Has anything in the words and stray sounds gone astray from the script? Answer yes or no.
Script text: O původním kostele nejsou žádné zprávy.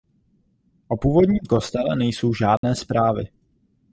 yes